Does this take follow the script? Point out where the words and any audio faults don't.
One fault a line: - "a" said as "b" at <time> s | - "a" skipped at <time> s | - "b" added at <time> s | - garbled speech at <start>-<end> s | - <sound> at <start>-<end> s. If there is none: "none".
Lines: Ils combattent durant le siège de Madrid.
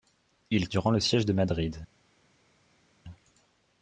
- "combattent" skipped at 0.7 s